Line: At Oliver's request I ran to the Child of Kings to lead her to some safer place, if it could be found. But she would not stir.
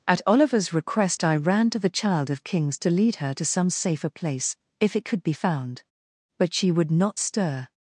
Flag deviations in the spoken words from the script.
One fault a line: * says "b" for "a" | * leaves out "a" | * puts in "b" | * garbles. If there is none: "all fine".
all fine